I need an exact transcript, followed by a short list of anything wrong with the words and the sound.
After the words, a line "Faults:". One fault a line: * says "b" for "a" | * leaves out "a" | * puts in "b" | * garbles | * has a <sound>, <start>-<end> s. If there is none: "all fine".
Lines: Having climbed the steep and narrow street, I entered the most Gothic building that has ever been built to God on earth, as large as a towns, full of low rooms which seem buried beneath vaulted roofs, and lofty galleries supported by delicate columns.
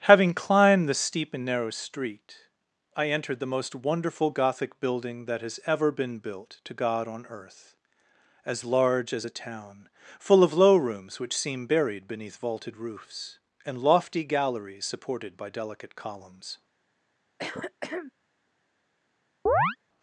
Having climbed the steep and narrow street, I entered the most wonderful Gothic building that has ever been built to God on earth, as large as a town, full of low rooms which seem buried beneath vaulted roofs, and lofty galleries supported by delicate columns.
Faults:
* puts in "wonderful"
* says "town" for "towns"
* has a throat clearing, 17.4-18.1 s
* has a chirp, 19.5-19.8 s